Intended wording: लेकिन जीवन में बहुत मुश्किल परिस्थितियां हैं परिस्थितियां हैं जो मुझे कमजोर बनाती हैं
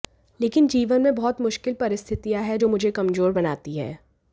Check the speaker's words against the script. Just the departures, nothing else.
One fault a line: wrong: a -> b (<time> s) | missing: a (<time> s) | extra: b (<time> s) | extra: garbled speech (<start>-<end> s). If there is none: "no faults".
missing: परिस्थितियां हैं (2.6 s)